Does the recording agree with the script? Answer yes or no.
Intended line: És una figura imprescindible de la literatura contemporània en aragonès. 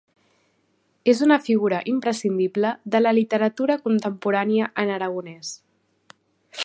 yes